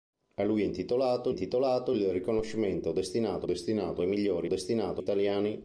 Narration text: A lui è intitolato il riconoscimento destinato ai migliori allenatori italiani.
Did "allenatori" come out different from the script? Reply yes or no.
yes